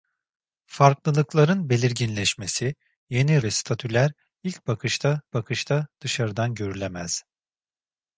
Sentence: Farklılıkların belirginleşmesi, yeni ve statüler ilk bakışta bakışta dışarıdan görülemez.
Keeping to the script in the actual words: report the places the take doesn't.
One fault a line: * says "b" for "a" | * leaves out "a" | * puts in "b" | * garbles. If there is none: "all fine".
all fine